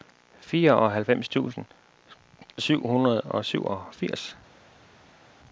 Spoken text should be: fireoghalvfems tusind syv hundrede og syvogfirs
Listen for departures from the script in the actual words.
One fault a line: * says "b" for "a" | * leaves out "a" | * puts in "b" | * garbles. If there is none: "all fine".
all fine